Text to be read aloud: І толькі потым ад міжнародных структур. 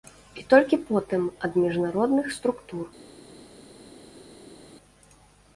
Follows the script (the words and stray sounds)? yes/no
yes